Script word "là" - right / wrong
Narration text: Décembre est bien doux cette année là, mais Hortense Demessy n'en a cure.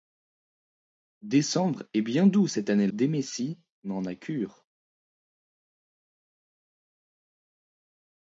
wrong